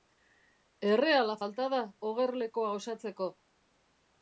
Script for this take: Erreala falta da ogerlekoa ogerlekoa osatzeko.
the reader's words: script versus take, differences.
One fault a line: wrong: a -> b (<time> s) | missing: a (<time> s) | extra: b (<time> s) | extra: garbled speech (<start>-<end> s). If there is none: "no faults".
missing: ogerlekoa (2.7 s)